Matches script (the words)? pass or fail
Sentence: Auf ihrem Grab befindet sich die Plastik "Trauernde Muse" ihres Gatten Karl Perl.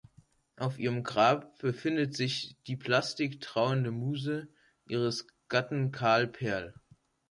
pass